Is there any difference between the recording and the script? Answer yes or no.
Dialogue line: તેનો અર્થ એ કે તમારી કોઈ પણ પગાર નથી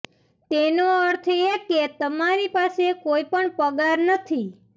yes